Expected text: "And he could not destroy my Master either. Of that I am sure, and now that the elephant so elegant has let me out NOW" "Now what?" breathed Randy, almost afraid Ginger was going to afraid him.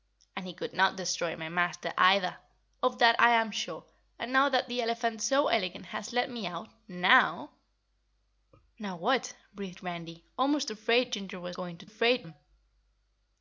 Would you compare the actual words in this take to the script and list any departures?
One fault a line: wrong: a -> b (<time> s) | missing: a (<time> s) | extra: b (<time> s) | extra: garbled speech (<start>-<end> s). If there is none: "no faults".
no faults